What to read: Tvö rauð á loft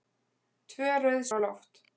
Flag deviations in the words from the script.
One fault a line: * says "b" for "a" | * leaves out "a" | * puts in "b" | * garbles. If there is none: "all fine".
all fine